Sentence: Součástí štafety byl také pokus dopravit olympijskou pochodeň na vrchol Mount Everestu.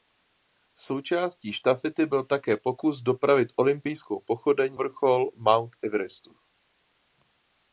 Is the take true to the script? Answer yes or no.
no